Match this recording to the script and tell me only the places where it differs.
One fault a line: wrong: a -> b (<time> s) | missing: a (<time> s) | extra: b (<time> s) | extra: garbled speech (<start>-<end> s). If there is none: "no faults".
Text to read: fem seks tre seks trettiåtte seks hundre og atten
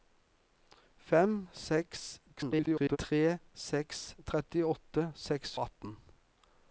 extra: garbled speech (2.4-3.0 s)
missing: hundre (5.6 s)